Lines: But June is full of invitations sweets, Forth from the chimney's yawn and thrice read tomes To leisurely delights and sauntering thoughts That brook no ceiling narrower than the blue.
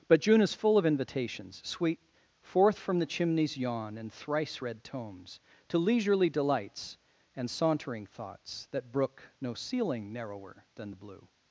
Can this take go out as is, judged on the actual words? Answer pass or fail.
fail